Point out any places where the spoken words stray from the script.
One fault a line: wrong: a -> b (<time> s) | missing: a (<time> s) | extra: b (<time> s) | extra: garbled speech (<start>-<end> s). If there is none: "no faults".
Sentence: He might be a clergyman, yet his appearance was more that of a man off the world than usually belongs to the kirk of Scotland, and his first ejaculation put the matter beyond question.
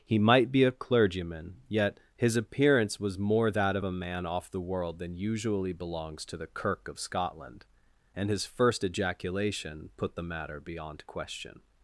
no faults